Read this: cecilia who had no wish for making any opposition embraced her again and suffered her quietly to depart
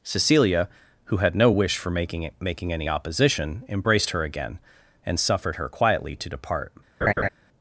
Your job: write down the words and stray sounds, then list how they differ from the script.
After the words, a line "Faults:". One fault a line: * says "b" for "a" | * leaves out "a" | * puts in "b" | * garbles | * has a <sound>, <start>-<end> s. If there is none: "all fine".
cecilia who had no wish for making making any opposition embraced her again and suffered her quietly to depart
Faults:
* puts in "making"
* has a laugh, 7.0-7.3 s